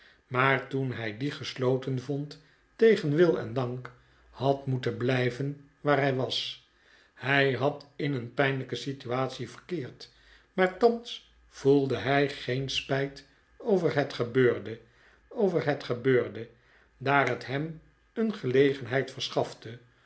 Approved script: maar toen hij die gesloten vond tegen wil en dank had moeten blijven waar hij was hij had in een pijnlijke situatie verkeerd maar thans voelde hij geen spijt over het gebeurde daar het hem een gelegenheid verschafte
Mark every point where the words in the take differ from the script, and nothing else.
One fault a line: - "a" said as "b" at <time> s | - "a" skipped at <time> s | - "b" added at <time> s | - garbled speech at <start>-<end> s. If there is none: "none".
- "over het gebeurde" added at 15.3 s